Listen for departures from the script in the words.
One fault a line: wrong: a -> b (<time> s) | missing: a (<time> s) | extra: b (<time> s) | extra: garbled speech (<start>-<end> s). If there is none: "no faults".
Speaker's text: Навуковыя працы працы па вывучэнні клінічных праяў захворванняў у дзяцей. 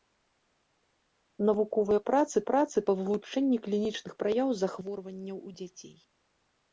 no faults